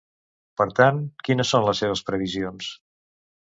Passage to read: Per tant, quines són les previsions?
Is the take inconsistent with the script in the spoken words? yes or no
yes